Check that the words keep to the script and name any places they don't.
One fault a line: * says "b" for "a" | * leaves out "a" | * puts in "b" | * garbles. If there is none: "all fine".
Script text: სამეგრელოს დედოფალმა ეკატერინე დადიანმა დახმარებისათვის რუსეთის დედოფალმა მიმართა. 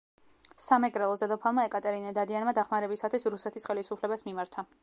* says "ხელისუფლებას" for "დედოფალმა"